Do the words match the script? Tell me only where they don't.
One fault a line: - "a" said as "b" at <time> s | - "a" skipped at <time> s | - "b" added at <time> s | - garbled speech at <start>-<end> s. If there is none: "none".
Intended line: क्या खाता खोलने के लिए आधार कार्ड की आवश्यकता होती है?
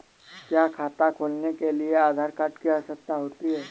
none